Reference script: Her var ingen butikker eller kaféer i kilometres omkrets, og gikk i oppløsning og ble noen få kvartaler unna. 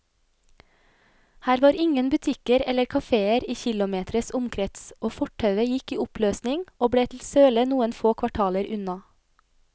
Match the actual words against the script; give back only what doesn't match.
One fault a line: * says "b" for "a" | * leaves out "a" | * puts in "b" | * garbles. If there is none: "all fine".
* puts in "fortauet"
* puts in "til søle"